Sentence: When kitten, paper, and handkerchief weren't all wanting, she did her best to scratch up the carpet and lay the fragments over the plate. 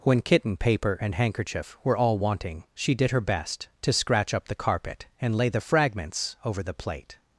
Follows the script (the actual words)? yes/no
no